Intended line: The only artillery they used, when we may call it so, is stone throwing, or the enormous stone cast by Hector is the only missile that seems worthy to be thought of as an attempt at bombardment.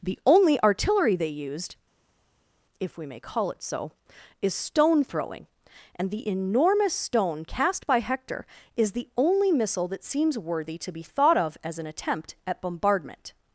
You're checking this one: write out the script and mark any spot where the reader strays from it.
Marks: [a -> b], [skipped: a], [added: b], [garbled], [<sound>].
The only artillery they used, [when -> if] we may call it so, is stone throwing, [or -> and] the enormous stone cast by Hector is the only missile that seems worthy to be thought of as an attempt at bombardment.